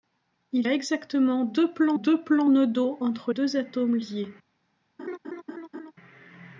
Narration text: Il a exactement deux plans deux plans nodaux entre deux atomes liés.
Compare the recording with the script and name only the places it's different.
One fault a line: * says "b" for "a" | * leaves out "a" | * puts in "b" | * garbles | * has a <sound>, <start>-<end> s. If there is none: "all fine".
* has a laugh, 5.0-5.9 s